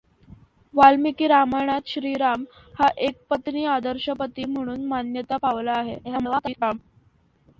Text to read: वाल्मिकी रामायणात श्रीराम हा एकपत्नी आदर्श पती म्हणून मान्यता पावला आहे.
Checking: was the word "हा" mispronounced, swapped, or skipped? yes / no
no